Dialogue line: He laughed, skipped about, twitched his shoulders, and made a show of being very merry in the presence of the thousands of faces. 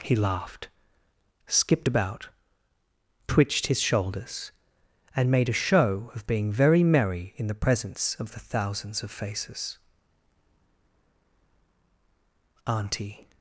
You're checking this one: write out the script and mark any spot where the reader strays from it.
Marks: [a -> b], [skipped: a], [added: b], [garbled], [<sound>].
He laughed, skipped about, twitched his shoulders, and made a show of being very merry in the presence of the thousands of faces. [added: Auntie]